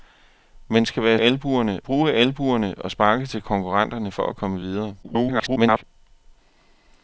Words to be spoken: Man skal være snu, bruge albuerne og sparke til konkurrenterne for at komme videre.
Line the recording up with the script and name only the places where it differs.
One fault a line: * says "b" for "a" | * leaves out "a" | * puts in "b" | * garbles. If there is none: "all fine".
* says "albuerne" for "snu"
* garbles